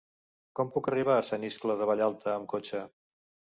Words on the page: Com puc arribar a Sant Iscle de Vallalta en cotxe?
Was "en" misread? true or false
true